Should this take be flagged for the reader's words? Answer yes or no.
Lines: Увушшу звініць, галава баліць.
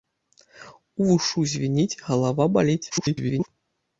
yes